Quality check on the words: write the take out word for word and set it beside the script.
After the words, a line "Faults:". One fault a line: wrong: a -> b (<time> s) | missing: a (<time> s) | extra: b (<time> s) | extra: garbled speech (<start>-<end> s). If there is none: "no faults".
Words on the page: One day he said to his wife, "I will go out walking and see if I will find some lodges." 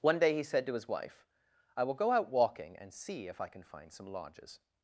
One day he said to his wife, "I will go out walking and see if I can find some lodges."
Faults:
wrong: will -> can (3.5 s)